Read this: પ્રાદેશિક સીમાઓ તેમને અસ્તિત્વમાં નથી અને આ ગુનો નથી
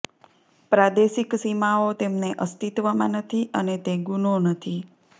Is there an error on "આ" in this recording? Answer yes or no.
yes